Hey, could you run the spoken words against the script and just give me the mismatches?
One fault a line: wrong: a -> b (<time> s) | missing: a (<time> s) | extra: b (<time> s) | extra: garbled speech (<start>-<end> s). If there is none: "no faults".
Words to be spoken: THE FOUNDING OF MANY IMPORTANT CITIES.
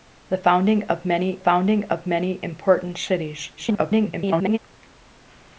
extra: FOUNDING OF MANY (1.4 s)
extra: garbled speech (3.6-4.6 s)